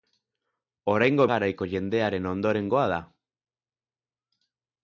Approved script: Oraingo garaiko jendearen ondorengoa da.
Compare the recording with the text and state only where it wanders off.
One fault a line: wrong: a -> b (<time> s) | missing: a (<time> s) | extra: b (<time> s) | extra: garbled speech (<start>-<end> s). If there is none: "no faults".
no faults